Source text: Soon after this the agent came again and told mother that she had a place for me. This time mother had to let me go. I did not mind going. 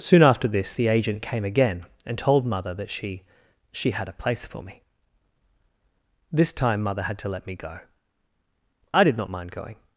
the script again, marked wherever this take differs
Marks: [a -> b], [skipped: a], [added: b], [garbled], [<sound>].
Soon after this the agent came again and told mother that she [added: she] had a place for me. This time mother had to let me go. I did not mind going.